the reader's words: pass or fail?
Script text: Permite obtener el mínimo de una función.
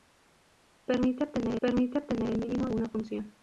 fail